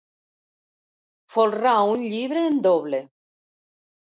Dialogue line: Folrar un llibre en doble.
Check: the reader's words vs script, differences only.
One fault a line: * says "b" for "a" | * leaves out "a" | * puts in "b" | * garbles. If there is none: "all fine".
all fine